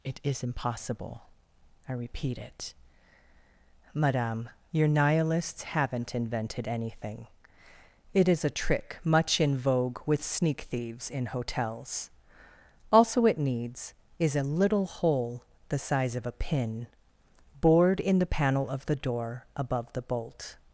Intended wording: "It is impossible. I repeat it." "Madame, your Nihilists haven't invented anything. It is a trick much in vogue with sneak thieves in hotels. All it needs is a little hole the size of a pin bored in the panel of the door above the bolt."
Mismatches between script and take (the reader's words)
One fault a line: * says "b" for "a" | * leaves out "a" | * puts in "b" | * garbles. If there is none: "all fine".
* says "Also" for "All"